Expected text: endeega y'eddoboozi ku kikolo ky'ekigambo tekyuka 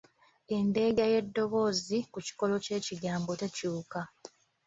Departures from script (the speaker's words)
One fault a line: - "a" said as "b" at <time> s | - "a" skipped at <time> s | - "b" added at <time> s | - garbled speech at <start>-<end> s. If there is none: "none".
none